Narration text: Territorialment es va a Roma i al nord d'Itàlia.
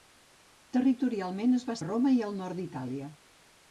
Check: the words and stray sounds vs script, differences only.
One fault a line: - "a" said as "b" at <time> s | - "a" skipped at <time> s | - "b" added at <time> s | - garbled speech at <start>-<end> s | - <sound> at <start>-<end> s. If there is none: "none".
none